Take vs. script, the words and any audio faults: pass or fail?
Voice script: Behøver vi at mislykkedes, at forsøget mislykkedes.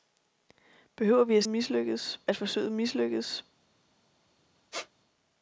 fail